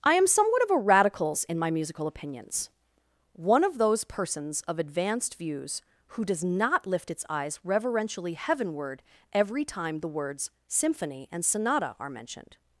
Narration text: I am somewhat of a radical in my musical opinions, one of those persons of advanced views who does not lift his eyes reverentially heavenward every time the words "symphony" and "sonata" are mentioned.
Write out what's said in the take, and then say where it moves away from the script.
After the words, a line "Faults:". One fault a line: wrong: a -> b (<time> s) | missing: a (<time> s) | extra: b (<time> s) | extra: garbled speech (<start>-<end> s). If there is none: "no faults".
I am somewhat of a radicals in my musical opinions, one of those persons of advanced views who does not lift its eyes reverentially heavenward every time the words "symphony" and "sonata" are mentioned.
Faults:
wrong: radical -> radicals (0.8 s)
wrong: his -> its (7.1 s)